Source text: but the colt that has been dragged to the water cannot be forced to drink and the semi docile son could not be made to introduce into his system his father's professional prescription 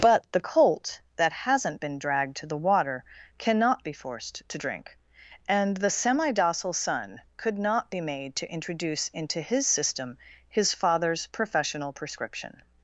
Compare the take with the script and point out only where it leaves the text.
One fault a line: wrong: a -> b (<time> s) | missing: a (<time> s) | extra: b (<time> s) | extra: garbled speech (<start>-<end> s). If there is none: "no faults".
wrong: has -> hasn't (1.3 s)